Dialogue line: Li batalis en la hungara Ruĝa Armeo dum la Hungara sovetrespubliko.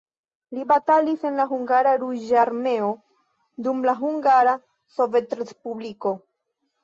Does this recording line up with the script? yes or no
yes